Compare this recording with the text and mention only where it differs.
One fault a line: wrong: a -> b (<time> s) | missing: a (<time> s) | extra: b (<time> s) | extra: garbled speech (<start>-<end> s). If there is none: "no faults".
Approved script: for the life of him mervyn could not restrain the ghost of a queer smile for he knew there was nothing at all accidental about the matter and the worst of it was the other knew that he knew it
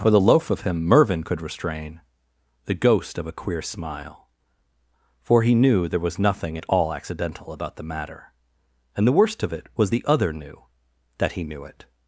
wrong: life -> loaf (0.2 s)
missing: not (1.4 s)